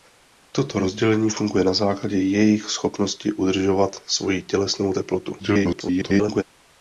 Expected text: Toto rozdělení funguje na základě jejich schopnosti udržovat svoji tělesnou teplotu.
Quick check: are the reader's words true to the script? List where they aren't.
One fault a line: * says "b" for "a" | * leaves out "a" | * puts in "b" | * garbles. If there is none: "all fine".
* garbles